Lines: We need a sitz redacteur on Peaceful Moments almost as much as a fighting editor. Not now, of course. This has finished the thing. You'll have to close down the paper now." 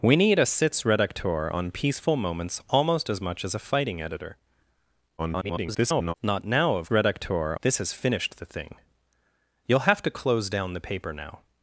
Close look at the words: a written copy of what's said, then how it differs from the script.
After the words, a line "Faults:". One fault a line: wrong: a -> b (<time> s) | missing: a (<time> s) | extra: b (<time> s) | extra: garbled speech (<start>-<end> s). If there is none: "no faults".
We need a sitz redacteur on Peaceful Moments almost as much as a fighting editor. [garbled] Not now, of redacteur. This has finished the thing. You'll have to close down the paper now."
Faults:
extra: garbled speech (5.2-6.1 s)
wrong: course -> redacteur (6.9 s)